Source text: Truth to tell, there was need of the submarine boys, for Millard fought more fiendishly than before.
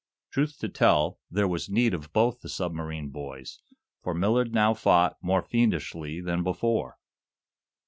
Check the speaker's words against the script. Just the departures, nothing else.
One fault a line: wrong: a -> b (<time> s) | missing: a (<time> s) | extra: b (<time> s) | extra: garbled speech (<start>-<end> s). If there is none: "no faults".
extra: both (2.1 s)
extra: now (4.5 s)